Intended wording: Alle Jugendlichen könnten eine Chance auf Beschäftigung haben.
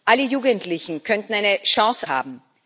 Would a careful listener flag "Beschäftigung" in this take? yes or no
yes